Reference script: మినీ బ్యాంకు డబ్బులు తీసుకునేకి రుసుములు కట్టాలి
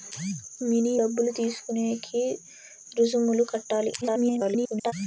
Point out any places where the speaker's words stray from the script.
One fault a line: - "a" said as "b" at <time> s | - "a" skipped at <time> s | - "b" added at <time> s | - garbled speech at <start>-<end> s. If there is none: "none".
- "బ్యాంకు" skipped at 0.9 s
- garbled speech at 4.0-4.9 s